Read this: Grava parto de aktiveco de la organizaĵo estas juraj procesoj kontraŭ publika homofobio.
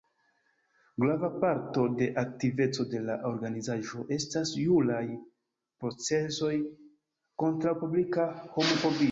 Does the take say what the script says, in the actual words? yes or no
yes